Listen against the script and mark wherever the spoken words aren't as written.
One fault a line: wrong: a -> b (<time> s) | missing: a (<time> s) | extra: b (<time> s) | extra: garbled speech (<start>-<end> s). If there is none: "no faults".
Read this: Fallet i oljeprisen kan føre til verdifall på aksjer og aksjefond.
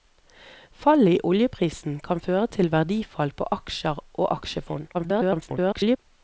extra: garbled speech (4.9-6.0 s)